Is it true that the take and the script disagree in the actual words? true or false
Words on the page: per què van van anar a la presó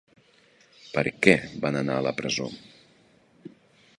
true